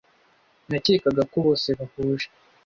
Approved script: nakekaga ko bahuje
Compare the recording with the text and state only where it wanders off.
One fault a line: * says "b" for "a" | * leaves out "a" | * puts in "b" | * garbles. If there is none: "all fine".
* puts in "bose"